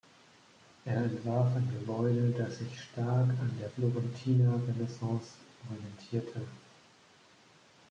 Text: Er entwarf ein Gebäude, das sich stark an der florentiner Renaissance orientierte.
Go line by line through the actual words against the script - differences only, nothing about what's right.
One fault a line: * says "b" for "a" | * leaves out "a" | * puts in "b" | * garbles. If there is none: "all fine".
all fine